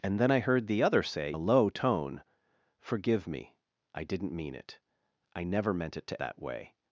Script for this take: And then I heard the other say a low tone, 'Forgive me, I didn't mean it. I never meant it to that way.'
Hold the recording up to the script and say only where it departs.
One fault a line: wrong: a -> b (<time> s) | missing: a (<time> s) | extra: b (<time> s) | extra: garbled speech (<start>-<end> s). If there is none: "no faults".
no faults